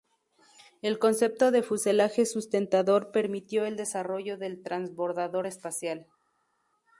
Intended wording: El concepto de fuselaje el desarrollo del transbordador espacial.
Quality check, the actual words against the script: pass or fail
fail